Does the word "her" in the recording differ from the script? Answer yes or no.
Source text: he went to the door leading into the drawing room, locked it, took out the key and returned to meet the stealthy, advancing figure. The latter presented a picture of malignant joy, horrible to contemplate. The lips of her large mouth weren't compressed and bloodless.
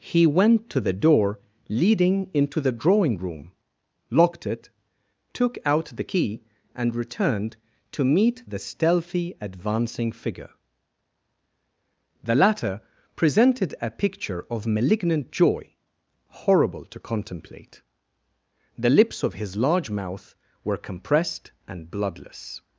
yes